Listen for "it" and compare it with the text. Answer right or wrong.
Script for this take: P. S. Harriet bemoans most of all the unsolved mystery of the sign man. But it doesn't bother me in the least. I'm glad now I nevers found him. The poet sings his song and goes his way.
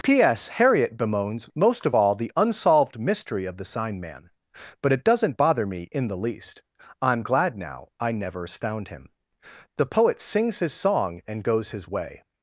right